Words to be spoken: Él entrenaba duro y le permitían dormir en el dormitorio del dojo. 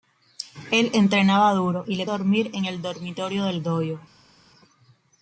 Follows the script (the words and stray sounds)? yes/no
no